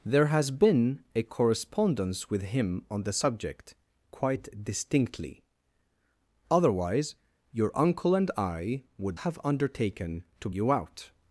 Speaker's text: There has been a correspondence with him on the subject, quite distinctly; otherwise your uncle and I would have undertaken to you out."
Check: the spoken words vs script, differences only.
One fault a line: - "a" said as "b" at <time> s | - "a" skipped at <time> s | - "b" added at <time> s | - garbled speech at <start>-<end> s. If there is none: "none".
none